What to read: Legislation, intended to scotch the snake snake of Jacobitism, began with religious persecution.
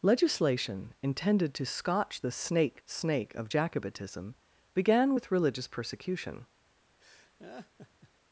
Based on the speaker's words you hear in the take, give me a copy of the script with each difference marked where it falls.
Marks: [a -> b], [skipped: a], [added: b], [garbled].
Legislation, intended to scotch the snake snake of Jacobitism, began with religious persecution.